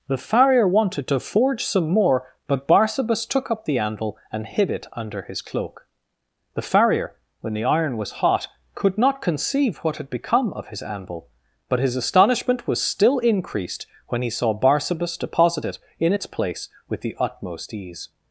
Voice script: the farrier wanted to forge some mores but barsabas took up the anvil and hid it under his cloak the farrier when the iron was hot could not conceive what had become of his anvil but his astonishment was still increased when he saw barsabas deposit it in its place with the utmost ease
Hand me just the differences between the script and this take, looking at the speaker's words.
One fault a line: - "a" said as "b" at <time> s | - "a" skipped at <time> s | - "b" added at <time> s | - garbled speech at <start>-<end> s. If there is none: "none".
- "mores" said as "more" at 1.9 s